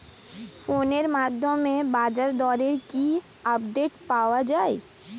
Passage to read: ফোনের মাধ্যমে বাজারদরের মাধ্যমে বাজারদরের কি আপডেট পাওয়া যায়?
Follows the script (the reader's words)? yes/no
no